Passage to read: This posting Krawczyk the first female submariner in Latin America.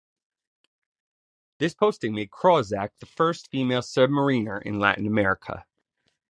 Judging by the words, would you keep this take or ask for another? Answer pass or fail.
fail